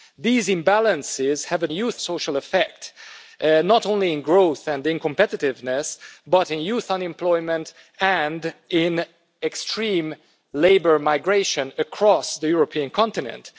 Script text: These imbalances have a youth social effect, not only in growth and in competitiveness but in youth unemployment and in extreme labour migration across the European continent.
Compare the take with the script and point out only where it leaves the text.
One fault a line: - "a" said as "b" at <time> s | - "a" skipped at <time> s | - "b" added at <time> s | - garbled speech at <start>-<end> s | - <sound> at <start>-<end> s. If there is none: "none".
none